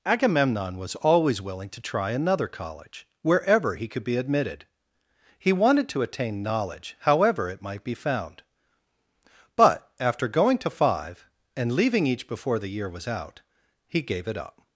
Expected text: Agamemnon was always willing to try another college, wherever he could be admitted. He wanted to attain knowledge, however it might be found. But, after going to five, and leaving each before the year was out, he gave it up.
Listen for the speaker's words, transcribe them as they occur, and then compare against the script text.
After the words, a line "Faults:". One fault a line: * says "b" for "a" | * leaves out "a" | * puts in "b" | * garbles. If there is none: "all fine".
Agamemnon was always willing to try another college, wherever he could be admitted. He wanted to attain knowledge, however it might be found. But, after going to five, and leaving each before the year was out, he gave it up.
Faults:
all fine